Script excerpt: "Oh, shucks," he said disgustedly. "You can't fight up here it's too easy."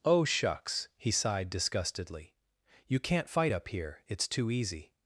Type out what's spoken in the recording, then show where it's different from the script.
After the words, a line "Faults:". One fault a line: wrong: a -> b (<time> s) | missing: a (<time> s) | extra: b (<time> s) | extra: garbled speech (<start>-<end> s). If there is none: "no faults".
"Oh, shucks," he sighed disgustedly. "You can't fight up here it's too easy."
Faults:
wrong: said -> sighed (1.1 s)